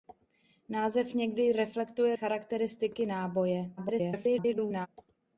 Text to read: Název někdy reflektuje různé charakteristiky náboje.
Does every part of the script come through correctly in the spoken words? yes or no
no